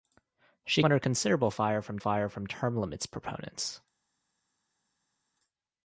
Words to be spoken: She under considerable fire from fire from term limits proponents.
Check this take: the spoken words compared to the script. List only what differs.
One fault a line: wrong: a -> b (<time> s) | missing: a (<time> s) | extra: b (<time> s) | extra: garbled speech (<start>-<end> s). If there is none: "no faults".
no faults